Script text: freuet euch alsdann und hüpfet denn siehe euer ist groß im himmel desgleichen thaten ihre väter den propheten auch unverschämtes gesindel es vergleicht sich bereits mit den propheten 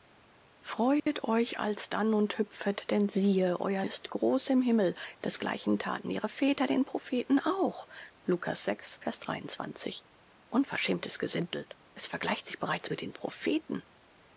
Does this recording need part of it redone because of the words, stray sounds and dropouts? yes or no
yes